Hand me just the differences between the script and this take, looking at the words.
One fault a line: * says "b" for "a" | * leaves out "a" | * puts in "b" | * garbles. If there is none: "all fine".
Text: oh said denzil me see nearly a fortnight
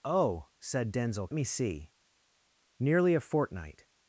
all fine